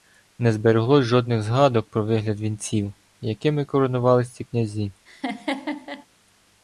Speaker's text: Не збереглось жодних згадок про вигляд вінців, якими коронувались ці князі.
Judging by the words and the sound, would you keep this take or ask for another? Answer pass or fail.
fail